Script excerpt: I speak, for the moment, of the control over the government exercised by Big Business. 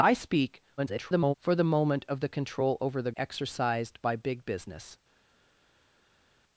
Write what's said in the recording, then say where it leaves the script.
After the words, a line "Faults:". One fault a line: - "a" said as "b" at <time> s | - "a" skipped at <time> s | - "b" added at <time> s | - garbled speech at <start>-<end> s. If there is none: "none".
I speak, [garbled] for the moment, of the control over the exercised by Big Business.
Faults:
- garbled speech at 0.8-1.3 s
- "government" skipped at 3.1 s